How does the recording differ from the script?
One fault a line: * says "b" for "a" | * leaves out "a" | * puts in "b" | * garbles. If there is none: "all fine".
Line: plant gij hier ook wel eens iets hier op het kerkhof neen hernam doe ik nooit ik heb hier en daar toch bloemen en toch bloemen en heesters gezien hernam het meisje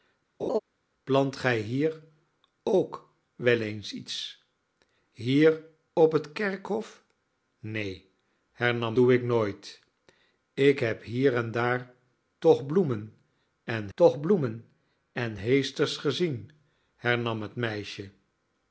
all fine